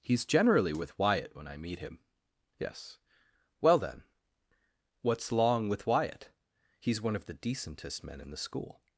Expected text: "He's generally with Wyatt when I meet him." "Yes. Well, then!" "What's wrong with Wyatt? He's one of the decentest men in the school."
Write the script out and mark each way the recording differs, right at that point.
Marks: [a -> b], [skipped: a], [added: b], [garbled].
"He's generally with Wyatt when I meet him." "Yes. Well, then!" "What's [wrong -> long] with Wyatt? He's one of the decentest men in the school."